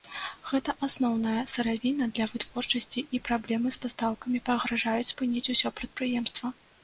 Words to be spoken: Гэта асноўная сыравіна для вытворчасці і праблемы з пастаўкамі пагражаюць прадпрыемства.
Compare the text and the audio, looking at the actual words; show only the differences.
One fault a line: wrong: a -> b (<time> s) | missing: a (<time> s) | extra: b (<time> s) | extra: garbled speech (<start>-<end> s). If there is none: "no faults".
extra: спыніць усё (5.1 s)